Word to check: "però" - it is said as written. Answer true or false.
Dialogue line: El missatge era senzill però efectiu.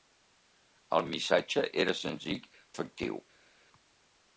false